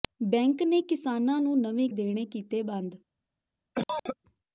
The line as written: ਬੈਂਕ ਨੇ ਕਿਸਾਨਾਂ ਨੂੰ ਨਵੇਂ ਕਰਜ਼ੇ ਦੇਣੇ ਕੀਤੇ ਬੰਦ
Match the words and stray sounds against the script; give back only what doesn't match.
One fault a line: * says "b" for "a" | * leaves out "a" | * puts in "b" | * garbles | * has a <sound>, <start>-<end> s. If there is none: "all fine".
* leaves out "ਕਰਜ਼ੇ"
* has a cough, 3.8-4.2 s